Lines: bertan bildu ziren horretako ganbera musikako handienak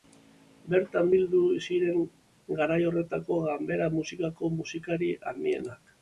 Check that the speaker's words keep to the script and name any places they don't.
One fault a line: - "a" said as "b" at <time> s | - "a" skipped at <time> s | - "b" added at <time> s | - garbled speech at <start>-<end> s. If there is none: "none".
- "garai" added at 2.6 s
- "musikari" added at 4.6 s